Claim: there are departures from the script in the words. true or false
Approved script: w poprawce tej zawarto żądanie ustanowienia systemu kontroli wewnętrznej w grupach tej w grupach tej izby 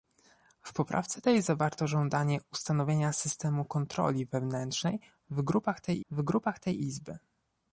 false